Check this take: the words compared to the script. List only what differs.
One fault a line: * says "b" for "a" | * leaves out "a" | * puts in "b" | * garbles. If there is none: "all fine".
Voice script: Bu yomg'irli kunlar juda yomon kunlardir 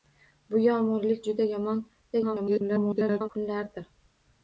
* leaves out "kunlar"
* garbles